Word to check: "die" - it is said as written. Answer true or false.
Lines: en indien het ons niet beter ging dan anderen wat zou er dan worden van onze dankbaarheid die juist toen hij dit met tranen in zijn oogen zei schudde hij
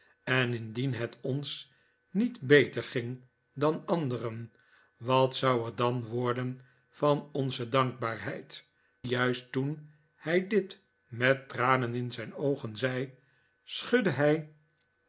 false